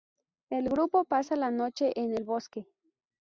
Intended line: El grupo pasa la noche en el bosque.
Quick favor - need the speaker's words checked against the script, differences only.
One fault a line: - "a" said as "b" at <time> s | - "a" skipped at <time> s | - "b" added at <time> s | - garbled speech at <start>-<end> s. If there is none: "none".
none